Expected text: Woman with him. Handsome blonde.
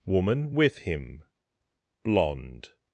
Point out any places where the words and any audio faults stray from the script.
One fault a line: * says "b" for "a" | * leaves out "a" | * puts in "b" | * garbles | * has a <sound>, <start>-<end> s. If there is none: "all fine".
* leaves out "Handsome"